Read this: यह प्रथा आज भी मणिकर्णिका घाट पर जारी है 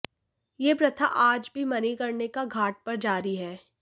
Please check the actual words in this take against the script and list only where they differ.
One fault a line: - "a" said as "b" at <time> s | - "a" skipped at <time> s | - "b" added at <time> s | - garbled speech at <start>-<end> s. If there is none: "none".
none